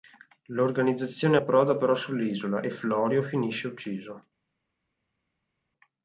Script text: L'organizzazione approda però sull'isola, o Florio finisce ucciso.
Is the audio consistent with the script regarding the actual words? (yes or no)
no